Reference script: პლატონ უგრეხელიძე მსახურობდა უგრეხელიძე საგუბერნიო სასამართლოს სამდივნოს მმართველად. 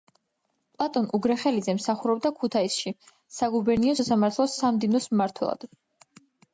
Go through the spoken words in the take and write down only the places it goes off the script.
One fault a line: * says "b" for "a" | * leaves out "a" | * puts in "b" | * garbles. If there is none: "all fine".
* says "ქუთაისში" for "უგრეხელიძე"